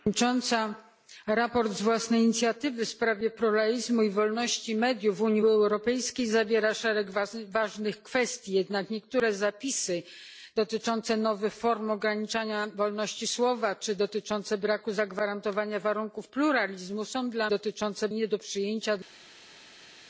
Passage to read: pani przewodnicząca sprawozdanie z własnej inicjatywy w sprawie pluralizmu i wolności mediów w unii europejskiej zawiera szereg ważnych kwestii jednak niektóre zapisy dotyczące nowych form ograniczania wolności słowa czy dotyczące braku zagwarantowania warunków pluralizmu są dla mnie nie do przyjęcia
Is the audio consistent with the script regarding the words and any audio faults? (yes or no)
no